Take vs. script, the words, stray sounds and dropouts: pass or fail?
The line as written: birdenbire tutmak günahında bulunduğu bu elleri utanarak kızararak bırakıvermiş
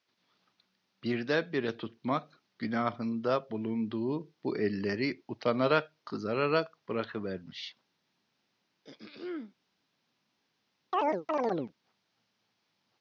fail